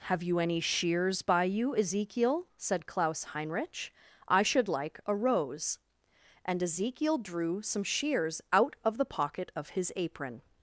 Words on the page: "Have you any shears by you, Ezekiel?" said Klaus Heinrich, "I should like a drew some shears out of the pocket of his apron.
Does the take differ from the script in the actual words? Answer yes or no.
yes